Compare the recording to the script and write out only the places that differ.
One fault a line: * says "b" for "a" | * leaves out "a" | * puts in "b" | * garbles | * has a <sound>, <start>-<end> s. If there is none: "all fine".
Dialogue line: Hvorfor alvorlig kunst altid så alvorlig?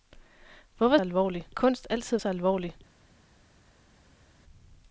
all fine